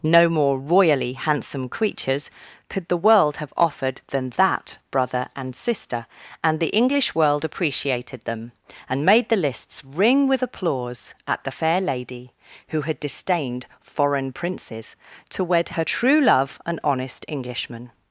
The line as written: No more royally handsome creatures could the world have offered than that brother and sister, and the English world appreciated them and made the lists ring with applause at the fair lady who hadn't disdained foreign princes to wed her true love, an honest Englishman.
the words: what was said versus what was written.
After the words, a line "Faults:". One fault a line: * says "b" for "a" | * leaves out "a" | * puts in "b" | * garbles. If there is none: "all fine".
No more royally handsome creatures could the world have offered than that brother and sister, and the English world appreciated them and made the lists ring with applause at the fair lady who had disdained foreign princes to wed her true love, an honest Englishman.
Faults:
* says "had" for "hadn't"